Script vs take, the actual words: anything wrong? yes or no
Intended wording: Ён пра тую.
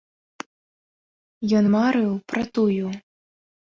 yes